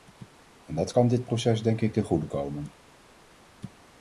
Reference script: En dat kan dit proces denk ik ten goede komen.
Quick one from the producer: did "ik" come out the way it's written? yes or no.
yes